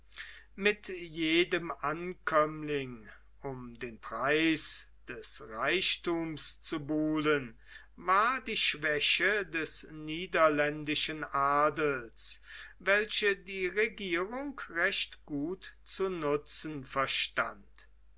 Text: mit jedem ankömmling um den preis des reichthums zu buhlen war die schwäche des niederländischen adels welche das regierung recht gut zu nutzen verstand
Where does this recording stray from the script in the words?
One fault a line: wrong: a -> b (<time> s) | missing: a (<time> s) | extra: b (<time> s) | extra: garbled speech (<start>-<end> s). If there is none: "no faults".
wrong: das -> die (13.4 s)